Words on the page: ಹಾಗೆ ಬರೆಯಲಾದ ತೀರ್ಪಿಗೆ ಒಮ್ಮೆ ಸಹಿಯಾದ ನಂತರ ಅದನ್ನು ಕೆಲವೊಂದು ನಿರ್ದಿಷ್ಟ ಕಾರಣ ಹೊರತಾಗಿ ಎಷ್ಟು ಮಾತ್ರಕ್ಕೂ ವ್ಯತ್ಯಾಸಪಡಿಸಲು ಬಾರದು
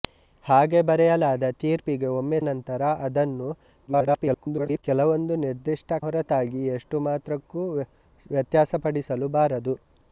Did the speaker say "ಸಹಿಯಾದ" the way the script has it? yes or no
no